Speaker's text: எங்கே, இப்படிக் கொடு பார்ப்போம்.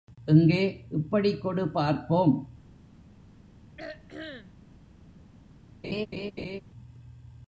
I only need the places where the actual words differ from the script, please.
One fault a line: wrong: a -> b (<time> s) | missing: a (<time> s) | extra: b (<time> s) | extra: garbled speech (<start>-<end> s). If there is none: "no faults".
no faults